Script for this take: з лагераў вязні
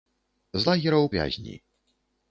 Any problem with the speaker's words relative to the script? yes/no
no